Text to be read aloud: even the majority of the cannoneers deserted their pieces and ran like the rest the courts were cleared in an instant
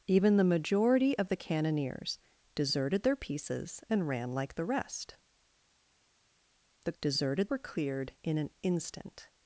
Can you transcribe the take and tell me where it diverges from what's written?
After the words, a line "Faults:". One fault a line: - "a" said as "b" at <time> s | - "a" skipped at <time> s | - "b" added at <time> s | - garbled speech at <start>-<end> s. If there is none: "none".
even the majority of the cannoneers deserted their pieces and ran like the rest the deserted were cleared in an instant
Faults:
- "courts" said as "deserted" at 7.0 s